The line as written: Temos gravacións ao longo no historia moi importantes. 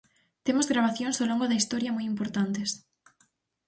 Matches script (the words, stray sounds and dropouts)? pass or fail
fail